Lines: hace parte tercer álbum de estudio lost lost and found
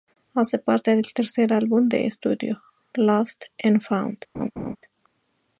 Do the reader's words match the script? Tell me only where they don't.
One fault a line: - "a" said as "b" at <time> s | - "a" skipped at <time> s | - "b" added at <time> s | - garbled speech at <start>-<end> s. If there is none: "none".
- "del" added at 0.9 s
- "lost" skipped at 3.5 s